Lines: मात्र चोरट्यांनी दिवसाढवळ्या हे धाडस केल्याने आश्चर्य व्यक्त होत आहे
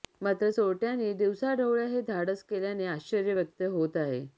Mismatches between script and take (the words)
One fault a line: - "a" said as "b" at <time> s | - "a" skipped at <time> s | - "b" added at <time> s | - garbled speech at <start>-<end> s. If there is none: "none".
none